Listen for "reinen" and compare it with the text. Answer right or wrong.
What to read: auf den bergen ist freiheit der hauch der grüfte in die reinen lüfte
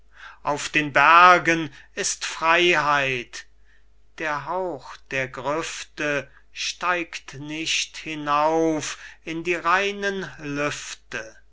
right